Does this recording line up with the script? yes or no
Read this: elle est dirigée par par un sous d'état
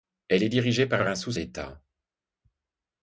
yes